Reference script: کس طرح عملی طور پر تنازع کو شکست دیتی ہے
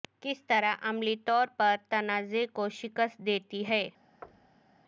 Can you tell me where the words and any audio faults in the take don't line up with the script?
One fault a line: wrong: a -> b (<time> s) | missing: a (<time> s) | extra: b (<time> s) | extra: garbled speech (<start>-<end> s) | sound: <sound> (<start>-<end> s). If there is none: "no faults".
sound: thud (4.2-4.8 s)